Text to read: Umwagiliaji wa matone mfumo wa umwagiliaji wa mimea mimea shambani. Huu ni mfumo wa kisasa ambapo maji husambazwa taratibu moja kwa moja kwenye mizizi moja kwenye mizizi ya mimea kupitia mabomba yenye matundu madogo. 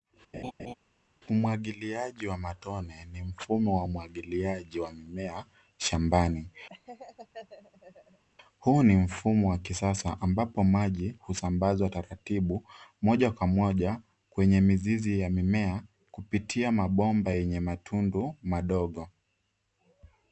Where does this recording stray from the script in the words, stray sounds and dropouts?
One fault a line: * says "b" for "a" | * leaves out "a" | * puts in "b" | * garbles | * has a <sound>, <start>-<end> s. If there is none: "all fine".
* has a laugh, 0.3-0.7 s
* puts in "ni"
* leaves out "mimea"
* has a laugh, 6.7-8.2 s
* leaves out "moja kwenye mizizi"